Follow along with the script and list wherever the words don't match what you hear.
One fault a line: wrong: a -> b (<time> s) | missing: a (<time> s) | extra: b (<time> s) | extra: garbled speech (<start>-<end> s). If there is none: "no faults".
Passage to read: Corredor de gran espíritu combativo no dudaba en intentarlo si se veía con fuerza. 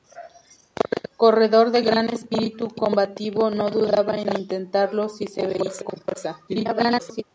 extra: garbled speech (6.5-7.2 s)